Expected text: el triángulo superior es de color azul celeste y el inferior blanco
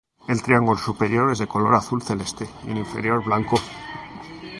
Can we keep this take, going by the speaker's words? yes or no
yes